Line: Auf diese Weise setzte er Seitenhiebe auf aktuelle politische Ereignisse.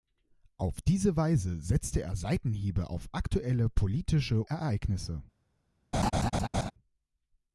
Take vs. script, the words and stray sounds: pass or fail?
fail